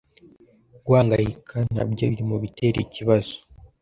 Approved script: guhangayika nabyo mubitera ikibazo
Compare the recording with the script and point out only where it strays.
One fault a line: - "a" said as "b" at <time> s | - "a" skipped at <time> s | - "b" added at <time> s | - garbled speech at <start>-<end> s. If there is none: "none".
- "biri" added at 2.1 s